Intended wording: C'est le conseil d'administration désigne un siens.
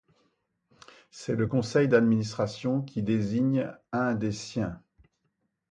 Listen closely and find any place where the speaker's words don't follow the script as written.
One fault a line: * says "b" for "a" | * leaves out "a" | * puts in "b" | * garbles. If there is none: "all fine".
* puts in "qui"
* puts in "des"